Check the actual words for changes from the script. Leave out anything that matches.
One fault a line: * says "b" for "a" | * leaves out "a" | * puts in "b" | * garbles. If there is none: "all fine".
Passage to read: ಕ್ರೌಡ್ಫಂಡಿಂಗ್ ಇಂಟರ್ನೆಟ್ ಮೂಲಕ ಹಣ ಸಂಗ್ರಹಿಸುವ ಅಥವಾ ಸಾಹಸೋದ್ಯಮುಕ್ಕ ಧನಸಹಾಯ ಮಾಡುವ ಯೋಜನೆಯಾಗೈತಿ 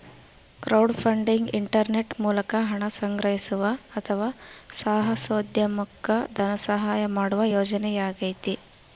all fine